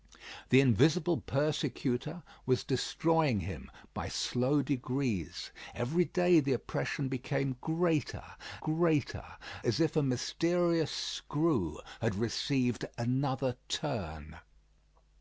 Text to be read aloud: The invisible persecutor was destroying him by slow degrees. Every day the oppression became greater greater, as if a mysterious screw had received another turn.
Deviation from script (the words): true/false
false